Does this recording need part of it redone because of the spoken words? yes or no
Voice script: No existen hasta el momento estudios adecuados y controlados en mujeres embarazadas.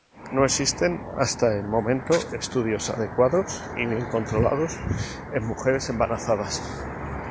yes